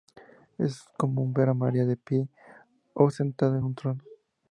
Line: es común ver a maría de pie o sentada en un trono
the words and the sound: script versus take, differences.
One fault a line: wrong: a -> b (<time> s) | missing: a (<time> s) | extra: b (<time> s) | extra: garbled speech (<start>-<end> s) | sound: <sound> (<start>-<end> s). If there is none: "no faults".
no faults